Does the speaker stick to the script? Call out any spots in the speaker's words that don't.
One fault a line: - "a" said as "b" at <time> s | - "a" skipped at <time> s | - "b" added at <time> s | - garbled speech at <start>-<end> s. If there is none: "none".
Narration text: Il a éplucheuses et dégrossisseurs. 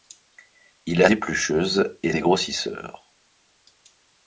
none